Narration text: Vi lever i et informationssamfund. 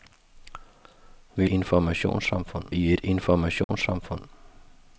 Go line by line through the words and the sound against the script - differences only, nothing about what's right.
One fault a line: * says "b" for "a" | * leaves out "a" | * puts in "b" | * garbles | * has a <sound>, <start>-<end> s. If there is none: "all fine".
* says "informationssamfund" for "lever"
* has a dropout, 3.6-3.7 s